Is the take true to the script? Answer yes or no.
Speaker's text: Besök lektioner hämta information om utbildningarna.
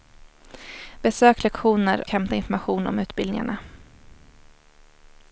yes